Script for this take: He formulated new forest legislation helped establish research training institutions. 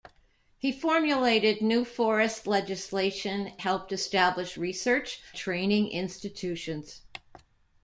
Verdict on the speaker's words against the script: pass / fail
pass